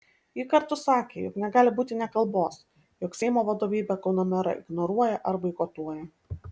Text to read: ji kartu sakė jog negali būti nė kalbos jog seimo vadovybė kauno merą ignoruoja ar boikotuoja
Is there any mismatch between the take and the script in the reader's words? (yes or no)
no